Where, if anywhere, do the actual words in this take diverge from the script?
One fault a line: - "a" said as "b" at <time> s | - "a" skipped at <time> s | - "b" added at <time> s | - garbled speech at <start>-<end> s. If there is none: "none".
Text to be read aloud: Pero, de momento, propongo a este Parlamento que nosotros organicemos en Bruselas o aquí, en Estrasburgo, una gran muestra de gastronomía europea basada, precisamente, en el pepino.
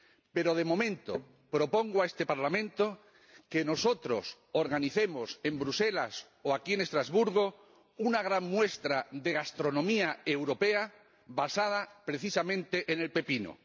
none